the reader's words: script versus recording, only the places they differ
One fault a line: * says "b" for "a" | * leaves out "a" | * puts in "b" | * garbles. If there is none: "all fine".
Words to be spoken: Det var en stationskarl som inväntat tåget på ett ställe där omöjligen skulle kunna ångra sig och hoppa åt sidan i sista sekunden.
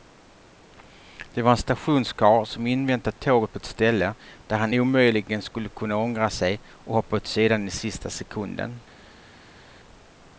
* puts in "han"